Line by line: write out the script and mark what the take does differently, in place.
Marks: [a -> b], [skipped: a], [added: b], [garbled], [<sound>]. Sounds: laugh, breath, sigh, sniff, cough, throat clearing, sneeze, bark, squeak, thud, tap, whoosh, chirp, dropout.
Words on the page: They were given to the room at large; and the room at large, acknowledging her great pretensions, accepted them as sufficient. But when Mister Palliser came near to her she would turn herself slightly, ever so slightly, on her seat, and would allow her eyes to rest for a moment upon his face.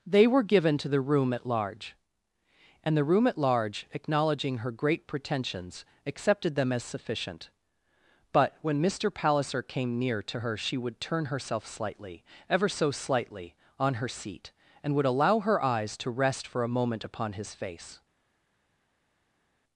They were given to the room at large; and the room at large, acknowledging her great pretensions, accepted them as sufficient. But when Mister Palliser came near to her she would turn herself slightly, ever so slightly, on her seat, and would allow her eyes to rest for a moment upon his face.